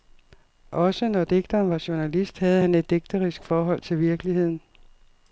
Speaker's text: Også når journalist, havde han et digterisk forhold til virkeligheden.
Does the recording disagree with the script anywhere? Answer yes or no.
yes